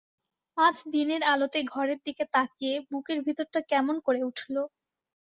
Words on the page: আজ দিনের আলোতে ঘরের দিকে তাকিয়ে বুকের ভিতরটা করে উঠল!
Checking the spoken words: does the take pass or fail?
fail